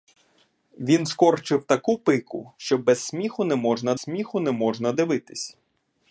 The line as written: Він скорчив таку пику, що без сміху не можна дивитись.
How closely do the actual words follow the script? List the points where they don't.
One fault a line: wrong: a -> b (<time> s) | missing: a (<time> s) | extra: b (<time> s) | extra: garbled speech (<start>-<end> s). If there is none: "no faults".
extra: сміху не можна (4.0 s)